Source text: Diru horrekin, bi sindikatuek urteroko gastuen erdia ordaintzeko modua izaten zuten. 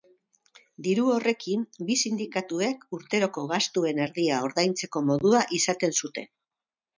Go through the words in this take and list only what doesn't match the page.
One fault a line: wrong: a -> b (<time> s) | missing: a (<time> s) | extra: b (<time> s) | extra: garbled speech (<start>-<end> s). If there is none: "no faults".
no faults